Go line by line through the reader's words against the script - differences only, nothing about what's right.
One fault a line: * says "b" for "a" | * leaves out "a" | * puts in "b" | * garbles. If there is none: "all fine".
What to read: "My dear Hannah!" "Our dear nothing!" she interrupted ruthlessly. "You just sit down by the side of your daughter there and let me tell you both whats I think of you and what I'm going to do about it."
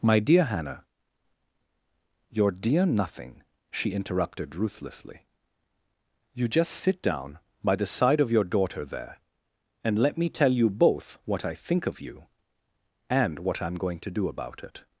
* says "Your" for "Our"
* says "what" for "whats"